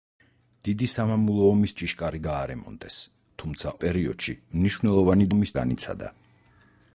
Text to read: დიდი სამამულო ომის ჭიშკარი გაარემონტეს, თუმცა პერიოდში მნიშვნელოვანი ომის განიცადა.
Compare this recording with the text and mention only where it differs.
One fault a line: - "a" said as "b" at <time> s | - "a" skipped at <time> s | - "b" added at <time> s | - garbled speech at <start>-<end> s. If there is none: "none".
none